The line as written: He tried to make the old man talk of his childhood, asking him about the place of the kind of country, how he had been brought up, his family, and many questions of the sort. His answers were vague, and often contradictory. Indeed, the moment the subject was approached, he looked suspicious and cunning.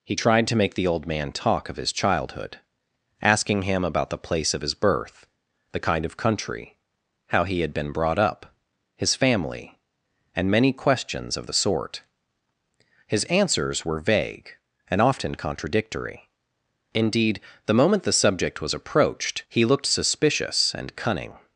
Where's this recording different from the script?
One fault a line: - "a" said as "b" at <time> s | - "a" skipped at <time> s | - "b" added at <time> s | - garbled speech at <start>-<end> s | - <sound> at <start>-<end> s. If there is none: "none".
- "his birth" added at 4.6 s